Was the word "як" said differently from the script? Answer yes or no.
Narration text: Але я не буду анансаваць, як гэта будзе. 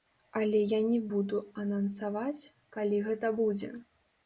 yes